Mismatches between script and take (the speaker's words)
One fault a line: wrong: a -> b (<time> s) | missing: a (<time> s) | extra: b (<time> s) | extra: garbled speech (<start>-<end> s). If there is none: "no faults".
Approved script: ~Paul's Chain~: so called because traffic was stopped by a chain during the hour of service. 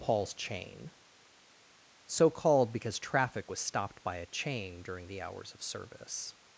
wrong: hour -> hours (5.2 s)